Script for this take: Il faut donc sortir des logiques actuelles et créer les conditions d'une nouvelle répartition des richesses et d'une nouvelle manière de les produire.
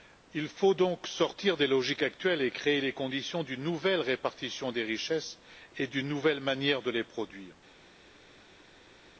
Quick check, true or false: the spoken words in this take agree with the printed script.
true